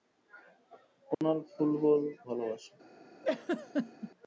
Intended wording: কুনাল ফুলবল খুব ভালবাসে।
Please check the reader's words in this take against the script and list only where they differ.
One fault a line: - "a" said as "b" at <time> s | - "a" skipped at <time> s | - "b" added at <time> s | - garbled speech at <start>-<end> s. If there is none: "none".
- "খুব" skipped at 2.0 s